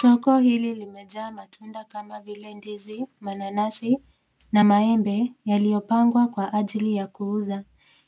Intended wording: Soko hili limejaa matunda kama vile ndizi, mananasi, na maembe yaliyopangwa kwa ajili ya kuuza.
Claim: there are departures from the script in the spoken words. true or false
false